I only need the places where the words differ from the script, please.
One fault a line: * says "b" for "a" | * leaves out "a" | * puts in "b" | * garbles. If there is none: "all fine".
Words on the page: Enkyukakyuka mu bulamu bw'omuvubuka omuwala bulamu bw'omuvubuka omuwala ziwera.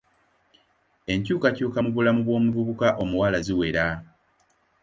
* leaves out "bulamu bw'omuvubuka omuwala"